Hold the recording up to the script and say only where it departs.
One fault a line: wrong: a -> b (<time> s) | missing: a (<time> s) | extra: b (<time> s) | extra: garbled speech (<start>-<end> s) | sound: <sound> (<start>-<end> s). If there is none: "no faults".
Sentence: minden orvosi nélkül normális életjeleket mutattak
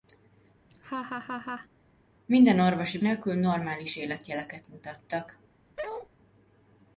sound: laugh (0.7-1.7 s)
sound: bark (5.8-6.1 s)